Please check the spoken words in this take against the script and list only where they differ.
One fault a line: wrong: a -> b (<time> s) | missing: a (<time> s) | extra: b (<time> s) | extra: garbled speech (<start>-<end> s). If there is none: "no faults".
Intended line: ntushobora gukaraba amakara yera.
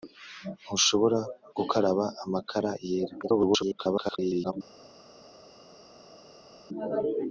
extra: garbled speech (3.2-4.5 s)